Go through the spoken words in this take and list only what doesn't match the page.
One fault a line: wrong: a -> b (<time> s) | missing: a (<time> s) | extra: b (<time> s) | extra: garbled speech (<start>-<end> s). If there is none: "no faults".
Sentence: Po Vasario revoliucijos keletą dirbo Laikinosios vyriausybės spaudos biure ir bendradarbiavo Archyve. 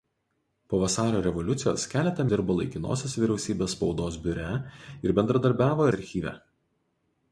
no faults